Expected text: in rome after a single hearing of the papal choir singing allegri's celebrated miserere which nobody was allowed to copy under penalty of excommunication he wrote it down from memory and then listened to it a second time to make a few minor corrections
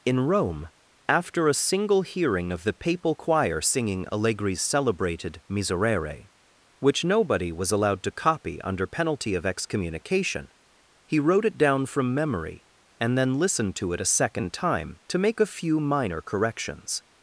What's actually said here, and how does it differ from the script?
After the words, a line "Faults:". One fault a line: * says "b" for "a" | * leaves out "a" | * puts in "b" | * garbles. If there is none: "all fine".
in rome after a single hearing of the papal choir singing allegri's celebrated miserere which nobody was allowed to copy under penalty of excommunication he wrote it down from memory and then listened to it a second time to make a few minor corrections
Faults:
all fine